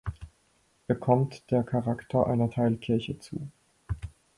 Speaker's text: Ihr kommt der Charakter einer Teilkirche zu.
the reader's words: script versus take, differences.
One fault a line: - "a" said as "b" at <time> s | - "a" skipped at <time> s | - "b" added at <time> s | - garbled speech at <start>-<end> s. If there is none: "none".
none